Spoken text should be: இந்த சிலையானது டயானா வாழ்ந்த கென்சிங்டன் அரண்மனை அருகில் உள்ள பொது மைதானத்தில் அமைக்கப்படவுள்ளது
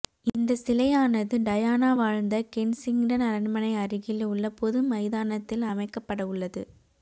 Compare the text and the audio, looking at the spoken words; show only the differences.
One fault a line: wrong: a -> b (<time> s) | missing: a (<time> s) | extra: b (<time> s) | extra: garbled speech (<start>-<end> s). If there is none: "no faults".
no faults